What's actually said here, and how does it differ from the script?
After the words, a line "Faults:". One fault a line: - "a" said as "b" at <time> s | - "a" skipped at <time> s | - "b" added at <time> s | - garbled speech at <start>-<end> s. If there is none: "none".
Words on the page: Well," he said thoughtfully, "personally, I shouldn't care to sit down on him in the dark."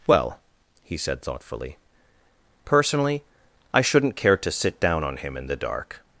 Well," he said thoughtfully, "personally, I shouldn't care to sit down on him in the dark."
Faults:
none